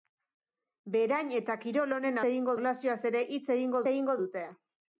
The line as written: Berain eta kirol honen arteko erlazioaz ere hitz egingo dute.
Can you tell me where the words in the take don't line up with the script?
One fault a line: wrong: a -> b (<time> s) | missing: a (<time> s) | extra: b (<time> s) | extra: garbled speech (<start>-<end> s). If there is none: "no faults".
wrong: arteko -> egingo (2.3 s)
extra: egingo (3.9 s)